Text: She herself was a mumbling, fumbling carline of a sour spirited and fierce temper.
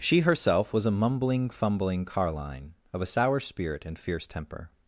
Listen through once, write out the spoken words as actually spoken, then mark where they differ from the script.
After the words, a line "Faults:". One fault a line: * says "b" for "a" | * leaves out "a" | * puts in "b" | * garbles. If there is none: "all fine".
She herself was a mumbling, fumbling carline of a sour spirit and fierce temper.
Faults:
* says "spirit" for "spirited"